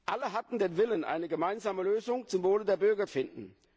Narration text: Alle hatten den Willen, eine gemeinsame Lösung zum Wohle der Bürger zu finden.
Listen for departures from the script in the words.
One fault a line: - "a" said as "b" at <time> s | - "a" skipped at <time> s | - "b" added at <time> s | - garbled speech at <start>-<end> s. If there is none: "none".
- "zu" skipped at 3.1 s